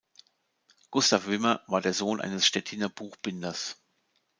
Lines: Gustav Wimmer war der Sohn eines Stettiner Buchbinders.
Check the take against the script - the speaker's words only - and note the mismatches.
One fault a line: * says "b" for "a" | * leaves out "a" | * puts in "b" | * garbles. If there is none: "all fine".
all fine